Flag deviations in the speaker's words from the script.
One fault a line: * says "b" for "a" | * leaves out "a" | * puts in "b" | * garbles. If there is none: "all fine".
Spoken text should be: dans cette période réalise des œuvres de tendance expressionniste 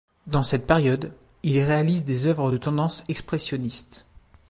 * puts in "il"